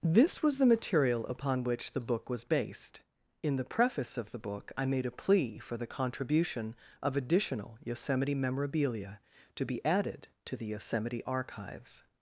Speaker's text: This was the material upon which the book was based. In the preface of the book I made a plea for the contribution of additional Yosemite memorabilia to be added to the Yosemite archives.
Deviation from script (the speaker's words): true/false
false